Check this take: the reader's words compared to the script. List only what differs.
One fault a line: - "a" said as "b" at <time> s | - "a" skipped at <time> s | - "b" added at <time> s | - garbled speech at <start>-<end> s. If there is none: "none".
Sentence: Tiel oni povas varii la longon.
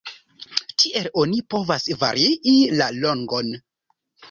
none